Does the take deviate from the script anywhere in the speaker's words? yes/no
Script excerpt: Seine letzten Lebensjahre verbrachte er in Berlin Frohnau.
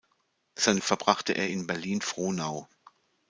yes